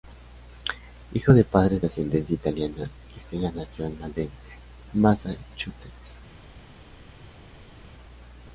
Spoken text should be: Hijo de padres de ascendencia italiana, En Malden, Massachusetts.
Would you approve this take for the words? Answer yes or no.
no